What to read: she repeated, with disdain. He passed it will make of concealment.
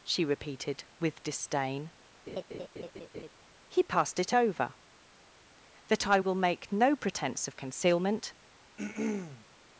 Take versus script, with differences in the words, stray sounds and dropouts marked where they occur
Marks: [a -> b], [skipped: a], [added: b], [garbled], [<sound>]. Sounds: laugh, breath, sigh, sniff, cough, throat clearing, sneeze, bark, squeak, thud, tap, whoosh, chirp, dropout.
she repeated, with disdain. [laugh] He passed it [added: over that I] will make [added: no pretence] of concealment. [throat clearing]